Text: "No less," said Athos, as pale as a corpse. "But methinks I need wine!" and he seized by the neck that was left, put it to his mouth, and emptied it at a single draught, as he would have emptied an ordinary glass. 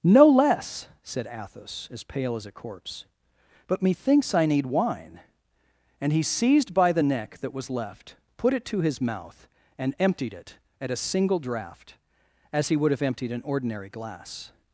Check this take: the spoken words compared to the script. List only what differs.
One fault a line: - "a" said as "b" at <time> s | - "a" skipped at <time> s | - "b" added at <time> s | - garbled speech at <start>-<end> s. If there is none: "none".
none